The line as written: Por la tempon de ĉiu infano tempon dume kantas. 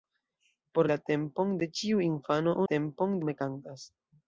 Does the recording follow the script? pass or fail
pass